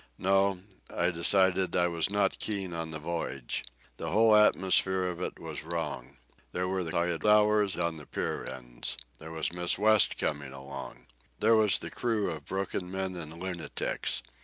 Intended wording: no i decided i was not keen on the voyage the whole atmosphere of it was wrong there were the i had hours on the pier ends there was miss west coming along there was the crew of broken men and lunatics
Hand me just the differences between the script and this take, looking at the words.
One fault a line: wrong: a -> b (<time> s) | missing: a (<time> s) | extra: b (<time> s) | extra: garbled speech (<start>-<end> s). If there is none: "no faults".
no faults